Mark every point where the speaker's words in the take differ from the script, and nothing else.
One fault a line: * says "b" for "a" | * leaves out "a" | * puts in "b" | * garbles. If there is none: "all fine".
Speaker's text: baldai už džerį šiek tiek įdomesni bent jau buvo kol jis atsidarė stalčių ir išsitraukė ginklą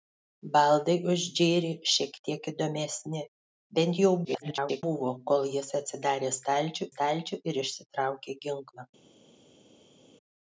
* garbles
* puts in "stalčių"